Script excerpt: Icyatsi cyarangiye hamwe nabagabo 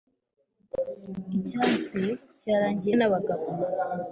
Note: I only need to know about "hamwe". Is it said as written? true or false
false